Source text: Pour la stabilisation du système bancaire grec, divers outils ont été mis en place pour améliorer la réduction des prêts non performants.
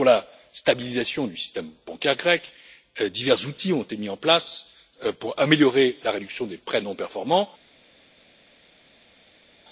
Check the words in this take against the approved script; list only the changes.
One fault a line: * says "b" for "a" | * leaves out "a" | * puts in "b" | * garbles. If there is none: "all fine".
all fine